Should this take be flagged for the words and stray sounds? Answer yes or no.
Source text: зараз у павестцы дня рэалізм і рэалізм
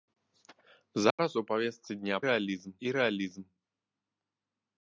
yes